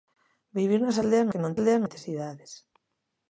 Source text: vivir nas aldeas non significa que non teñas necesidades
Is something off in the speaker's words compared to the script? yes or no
yes